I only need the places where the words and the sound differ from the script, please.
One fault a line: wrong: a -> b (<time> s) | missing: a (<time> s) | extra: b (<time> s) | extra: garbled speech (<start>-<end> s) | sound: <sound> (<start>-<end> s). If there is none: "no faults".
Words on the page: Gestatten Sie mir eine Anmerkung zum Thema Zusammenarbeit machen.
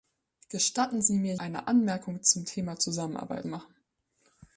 no faults